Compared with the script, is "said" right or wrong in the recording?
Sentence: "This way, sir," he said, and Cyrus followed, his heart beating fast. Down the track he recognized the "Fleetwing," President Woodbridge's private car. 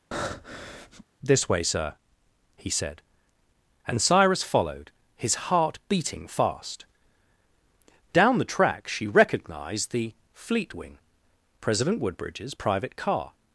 right